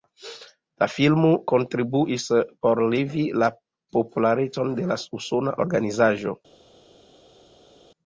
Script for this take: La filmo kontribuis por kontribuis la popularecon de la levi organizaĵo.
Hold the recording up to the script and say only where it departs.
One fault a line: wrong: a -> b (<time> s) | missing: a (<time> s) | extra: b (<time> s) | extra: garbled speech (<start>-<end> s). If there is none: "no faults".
wrong: kontribuis -> levi (2.9 s)
wrong: levi -> usona (5.2 s)